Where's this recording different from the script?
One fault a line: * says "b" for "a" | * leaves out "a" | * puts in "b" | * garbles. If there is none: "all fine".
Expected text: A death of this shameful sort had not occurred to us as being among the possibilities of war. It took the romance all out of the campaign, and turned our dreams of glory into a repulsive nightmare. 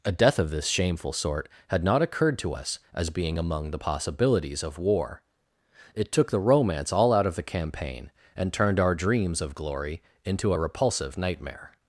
all fine